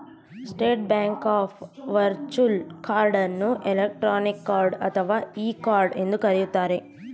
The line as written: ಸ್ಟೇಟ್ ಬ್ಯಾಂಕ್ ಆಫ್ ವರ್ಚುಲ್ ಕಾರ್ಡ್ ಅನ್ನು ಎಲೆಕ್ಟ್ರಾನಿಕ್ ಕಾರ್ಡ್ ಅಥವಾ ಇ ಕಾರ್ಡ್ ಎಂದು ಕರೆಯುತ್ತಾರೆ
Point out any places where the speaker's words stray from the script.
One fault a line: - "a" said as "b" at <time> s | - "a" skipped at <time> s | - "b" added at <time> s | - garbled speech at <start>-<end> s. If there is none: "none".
none